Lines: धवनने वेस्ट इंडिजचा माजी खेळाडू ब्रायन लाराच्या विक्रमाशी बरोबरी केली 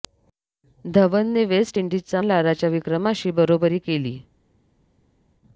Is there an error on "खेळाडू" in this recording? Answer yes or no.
yes